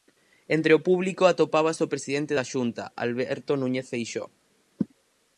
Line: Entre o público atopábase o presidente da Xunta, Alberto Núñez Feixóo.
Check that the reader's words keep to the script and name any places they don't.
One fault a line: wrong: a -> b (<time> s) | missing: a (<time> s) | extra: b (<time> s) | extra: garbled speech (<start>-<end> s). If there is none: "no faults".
no faults